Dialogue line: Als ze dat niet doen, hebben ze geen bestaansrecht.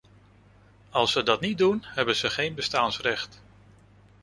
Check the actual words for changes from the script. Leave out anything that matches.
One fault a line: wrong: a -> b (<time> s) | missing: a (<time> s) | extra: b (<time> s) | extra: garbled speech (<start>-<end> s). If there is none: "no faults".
no faults